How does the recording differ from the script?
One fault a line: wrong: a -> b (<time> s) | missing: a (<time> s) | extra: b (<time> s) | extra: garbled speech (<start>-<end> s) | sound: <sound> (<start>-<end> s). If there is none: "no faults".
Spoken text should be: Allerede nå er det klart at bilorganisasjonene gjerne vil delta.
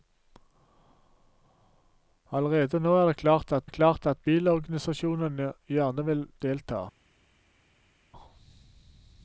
extra: det klart at (3.6 s)